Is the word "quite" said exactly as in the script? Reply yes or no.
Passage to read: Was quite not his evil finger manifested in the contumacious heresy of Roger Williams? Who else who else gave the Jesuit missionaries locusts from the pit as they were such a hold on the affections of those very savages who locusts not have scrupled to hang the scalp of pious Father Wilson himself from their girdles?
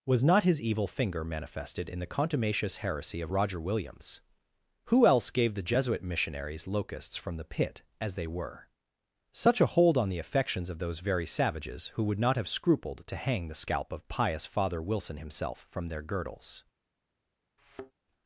no